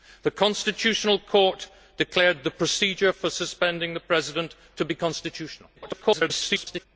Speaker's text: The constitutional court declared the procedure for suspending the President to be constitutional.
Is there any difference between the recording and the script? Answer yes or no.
yes